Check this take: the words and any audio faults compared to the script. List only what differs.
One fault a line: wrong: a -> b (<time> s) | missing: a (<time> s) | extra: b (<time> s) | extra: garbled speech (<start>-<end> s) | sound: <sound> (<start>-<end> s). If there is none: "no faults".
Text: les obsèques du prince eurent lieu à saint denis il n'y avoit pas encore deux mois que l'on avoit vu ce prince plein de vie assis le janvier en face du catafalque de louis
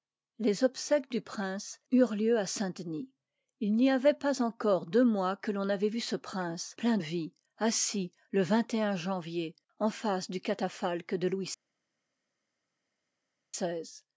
missing: de (7.0 s)